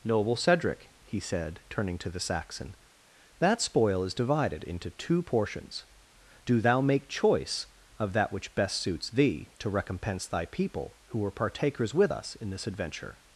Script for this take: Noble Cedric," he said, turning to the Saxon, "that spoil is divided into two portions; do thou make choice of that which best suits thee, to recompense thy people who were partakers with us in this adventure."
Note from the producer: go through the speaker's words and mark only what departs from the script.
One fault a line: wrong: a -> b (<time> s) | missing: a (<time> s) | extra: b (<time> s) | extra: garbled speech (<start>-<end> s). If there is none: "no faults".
no faults